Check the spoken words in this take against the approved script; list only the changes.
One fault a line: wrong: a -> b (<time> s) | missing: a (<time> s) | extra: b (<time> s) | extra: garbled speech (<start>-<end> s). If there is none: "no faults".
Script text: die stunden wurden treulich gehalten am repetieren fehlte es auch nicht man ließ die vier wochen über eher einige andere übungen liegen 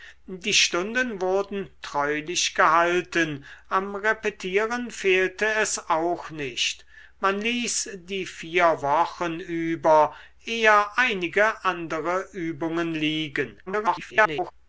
extra: garbled speech (13.7-14.5 s)